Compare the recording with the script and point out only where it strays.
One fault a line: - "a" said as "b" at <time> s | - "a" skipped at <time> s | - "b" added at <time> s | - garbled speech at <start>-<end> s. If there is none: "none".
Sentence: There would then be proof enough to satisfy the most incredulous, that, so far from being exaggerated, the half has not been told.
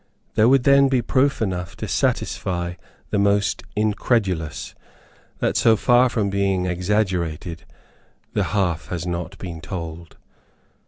none